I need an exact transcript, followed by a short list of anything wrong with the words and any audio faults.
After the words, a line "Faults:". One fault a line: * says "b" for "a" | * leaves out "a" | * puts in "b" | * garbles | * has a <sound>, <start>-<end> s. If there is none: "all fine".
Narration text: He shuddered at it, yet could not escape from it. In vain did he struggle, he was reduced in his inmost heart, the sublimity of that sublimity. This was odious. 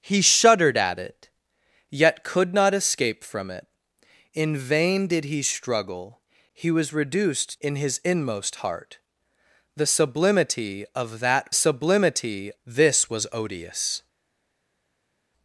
He shuddered at it, yet could not escape from it. In vain did he struggle, he was reduced in his inmost heart, the sublimity of that sublimity. This was odious.
Faults:
all fine